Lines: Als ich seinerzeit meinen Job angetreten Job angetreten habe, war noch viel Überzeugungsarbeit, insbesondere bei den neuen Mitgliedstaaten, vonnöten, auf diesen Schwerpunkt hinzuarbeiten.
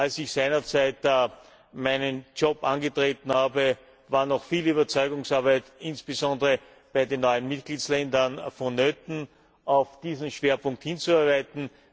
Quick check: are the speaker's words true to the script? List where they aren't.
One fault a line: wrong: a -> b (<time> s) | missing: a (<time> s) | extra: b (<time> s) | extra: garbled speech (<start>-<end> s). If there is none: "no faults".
missing: Job angetreten (3.3 s)